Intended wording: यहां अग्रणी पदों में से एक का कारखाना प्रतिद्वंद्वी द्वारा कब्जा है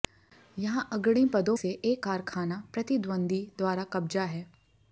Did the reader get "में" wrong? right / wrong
wrong